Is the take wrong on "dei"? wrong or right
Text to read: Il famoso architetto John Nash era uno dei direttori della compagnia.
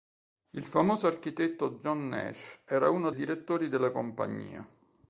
wrong